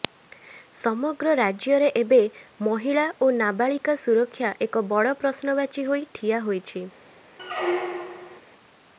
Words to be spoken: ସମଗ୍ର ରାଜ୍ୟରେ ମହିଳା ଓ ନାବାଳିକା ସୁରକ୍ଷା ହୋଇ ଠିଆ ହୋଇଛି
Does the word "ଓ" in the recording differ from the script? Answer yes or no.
no